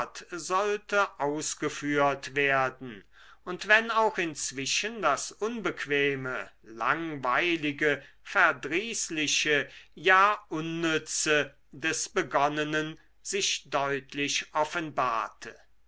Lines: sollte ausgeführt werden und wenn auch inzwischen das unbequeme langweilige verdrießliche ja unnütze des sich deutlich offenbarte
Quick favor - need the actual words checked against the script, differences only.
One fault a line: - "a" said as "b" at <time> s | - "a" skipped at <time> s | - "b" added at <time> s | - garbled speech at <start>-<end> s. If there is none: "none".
- "begonnenen" added at 12.1 s